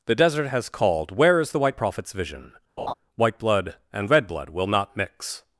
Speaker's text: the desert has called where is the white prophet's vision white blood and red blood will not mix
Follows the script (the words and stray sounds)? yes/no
no